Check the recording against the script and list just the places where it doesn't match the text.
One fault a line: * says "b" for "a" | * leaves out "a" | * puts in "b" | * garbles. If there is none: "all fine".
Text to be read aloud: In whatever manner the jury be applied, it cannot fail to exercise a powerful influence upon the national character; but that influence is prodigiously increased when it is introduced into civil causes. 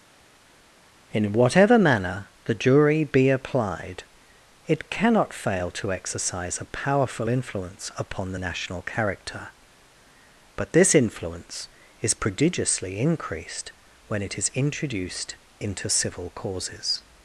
* says "this" for "that"